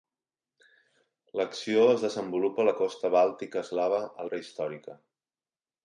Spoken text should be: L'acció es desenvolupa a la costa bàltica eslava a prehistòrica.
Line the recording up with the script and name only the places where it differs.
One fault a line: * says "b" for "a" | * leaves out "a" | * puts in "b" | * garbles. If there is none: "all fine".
all fine